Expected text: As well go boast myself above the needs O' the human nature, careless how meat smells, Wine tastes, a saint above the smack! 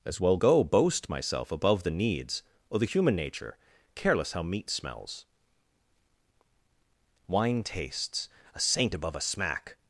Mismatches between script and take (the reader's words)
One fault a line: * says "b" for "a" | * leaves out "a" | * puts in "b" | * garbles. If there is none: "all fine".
* says "a" for "the"